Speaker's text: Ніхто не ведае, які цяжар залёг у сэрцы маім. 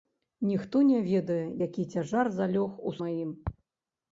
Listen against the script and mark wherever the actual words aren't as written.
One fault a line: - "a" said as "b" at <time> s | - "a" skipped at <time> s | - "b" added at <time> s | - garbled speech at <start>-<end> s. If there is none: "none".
- "сэрцы" skipped at 2.9 s